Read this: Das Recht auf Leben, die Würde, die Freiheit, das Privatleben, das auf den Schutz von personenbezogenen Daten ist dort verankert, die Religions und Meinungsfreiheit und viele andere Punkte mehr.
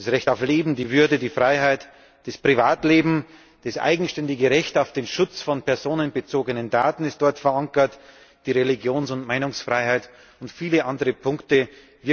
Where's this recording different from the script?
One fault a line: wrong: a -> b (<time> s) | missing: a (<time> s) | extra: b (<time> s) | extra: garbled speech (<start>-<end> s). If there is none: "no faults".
extra: eigenständige Recht (3.8 s)